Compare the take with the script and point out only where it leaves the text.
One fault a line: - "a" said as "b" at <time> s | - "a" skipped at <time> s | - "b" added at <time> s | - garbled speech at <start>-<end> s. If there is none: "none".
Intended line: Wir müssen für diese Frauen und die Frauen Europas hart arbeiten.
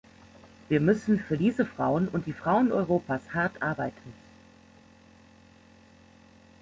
none